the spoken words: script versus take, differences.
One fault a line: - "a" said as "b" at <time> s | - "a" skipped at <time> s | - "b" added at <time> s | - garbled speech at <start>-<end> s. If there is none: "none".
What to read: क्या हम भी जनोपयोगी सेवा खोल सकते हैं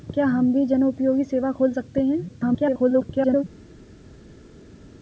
- garbled speech at 2.3-3.4 s